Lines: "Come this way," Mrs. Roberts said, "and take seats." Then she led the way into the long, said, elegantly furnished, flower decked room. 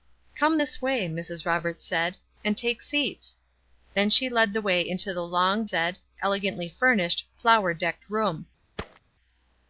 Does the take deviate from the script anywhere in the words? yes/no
no